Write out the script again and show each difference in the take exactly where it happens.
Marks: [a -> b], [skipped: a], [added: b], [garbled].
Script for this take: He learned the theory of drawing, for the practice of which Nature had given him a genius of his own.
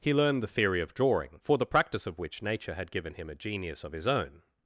He learned the theory of drawing, for the practice of which Nature had given him a genius of his own.